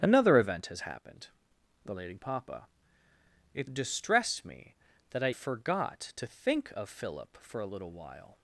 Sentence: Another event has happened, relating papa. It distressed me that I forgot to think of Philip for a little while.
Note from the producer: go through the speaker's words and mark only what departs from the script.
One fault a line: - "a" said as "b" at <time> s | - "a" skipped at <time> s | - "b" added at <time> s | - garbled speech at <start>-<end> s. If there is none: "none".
none